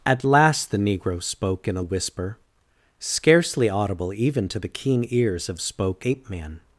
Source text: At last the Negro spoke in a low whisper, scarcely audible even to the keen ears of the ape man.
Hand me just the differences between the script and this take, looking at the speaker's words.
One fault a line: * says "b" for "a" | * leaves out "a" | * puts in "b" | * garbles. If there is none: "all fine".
* leaves out "low"
* says "spoke" for "the"